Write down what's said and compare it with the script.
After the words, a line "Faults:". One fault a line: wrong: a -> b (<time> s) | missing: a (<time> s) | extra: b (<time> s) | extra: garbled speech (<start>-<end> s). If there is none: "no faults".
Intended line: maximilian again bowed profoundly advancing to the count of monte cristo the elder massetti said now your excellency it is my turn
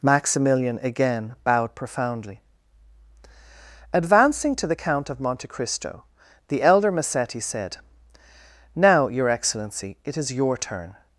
maximilian again bowed profoundly advancing to the count of monte cristo the elder massetti said now your excellency it is your turn
Faults:
wrong: my -> your (10.3 s)